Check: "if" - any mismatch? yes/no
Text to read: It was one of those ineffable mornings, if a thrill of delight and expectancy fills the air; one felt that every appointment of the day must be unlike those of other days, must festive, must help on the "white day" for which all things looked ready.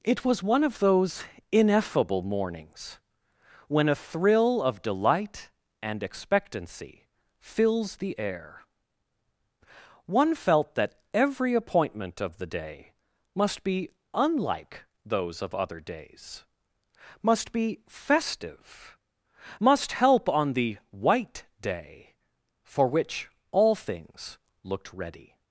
yes